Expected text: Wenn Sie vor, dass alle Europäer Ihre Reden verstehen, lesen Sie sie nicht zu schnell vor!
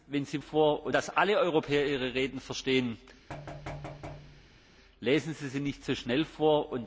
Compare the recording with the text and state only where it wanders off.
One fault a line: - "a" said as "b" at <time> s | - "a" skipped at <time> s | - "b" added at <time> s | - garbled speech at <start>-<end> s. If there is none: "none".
none